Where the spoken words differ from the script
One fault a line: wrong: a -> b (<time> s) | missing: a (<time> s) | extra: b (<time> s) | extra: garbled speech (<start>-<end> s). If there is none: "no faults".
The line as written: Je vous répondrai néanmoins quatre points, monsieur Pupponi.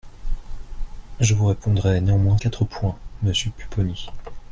no faults